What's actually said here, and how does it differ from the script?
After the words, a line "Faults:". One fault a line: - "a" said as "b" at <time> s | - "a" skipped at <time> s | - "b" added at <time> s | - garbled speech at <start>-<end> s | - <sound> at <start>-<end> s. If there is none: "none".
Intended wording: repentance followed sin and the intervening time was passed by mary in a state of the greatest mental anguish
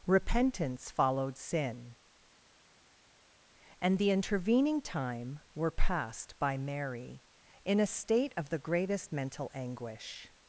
repentance followed sin and the intervening time were passed by mary in a state of the greatest mental anguish
Faults:
- "was" said as "were" at 5.5 s